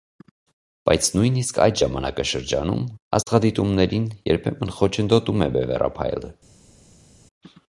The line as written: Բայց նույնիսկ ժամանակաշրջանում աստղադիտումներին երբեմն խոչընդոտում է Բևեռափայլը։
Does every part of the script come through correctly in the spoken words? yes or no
no